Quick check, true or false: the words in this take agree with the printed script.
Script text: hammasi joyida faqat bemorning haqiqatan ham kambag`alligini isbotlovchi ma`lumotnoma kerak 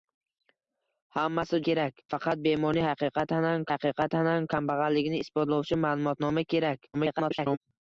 false